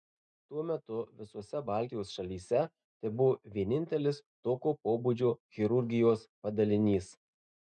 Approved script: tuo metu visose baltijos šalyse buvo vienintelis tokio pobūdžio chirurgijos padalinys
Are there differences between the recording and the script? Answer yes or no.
yes